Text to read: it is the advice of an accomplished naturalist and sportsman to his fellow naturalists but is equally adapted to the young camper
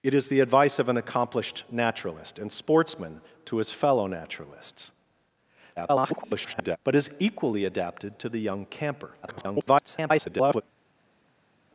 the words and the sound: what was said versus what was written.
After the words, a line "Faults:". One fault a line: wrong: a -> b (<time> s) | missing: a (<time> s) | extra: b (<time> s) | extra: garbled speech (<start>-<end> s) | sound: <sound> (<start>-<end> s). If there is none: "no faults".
it is the advice of an accomplished naturalist and sportsman to his fellow naturalists [garbled] but is equally adapted to the young camper [garbled]
Faults:
extra: garbled speech (5.8-6.8 s)
extra: garbled speech (9.2-10.6 s)